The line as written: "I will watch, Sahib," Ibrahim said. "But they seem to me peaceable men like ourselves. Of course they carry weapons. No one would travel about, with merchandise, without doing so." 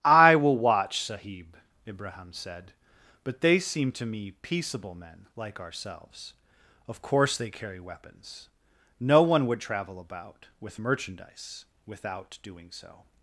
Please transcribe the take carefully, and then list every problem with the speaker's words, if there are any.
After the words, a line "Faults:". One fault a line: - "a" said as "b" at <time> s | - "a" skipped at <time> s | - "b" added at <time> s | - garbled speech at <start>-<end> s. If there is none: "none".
"I will watch, Sahib," Ibrahim said. "But they seem to me peaceable men like ourselves. Of course they carry weapons. No one would travel about, with merchandise, without doing so."
Faults:
none